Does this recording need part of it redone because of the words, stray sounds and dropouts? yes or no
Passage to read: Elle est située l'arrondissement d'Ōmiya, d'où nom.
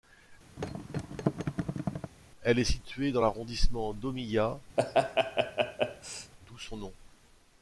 yes